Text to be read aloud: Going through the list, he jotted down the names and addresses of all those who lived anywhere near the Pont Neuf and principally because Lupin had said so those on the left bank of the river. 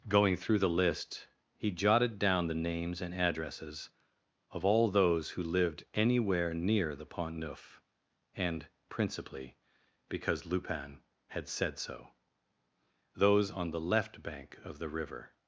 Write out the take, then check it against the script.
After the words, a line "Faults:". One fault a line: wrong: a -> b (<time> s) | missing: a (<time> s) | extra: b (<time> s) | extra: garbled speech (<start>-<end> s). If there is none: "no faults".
Going through the list, he jotted down the names and addresses of all those who lived anywhere near the Pont Neuf and principally because Lupin had said so those on the left bank of the river.
Faults:
no faults